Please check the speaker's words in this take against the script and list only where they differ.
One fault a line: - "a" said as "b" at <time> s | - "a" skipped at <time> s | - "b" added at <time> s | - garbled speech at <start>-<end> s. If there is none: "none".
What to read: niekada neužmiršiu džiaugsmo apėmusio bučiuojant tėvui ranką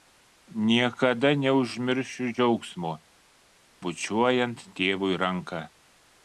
- "apėmusio" skipped at 3.0 s